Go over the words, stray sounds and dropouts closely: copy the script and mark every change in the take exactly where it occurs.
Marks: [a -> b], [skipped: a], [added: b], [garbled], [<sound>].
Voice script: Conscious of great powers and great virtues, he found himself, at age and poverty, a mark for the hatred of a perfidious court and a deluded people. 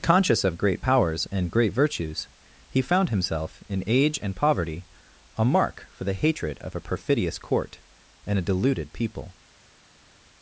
Conscious of great powers and great virtues, he found himself, [at -> in] age and poverty, a mark for the hatred of a perfidious court and a deluded people.